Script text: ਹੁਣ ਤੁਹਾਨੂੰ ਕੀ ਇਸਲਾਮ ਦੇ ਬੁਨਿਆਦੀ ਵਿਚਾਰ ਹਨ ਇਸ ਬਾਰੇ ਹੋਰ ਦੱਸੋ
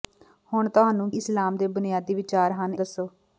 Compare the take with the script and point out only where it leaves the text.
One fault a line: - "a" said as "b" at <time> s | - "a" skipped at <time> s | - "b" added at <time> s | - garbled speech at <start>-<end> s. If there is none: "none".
- "ਕੀ" skipped at 1.1 s
- "ਇਸ ਬਾਰੇ ਹੋਰ" skipped at 2.7 s